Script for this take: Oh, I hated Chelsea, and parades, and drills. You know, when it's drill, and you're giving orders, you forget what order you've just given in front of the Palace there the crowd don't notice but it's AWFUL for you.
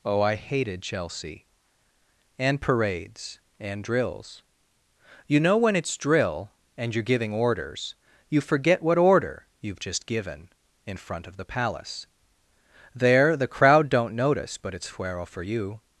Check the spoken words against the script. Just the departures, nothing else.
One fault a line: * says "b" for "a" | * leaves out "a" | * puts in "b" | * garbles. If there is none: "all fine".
* says "Fuero" for "AWFUL"